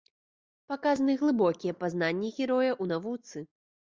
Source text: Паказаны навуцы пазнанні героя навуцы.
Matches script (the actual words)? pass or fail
fail